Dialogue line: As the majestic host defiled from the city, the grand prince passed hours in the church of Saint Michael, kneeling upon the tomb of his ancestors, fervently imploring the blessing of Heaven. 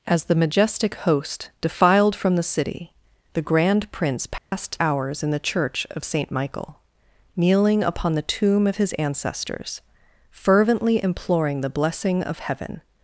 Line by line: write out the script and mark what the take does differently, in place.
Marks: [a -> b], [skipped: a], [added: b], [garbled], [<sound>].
As the majestic host defiled from the city, the grand prince passed [dropout] hours in the church of Saint Michael, kneeling upon the tomb of his ancestors, fervently imploring the blessing of Heaven.